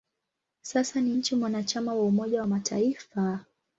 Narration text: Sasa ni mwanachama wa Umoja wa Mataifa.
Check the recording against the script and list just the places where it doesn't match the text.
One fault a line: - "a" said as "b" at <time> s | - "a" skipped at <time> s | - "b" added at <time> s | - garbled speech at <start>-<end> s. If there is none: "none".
- "nchi" added at 1.1 s